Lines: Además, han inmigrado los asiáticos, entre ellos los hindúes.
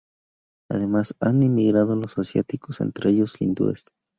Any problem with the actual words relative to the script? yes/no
yes